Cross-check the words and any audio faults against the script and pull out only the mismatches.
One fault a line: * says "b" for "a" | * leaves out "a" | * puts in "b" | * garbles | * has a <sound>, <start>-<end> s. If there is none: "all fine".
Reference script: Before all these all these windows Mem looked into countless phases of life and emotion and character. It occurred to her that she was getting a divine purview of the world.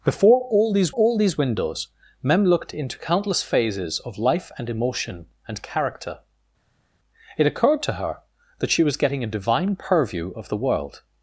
all fine